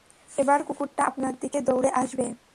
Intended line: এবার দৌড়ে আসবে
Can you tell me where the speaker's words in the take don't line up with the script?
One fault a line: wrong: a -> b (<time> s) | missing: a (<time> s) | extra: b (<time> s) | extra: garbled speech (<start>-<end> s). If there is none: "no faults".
extra: কুকুরটা আপনার দিকে (0.6 s)